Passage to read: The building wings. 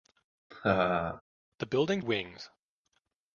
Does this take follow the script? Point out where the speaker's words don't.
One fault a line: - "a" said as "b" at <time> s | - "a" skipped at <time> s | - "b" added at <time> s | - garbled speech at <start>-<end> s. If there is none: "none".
none